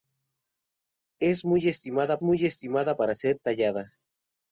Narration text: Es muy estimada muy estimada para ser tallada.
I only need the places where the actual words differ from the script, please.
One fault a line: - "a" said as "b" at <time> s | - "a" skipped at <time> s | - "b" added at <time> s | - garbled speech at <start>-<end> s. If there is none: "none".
none